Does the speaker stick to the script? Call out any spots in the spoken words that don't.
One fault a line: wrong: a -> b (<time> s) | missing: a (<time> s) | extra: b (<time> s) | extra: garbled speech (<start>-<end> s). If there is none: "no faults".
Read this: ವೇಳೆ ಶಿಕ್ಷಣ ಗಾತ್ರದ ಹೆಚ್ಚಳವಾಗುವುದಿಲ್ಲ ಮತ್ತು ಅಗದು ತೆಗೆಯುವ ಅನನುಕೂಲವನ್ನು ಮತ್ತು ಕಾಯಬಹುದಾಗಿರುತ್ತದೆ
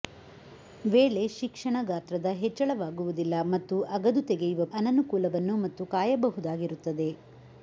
no faults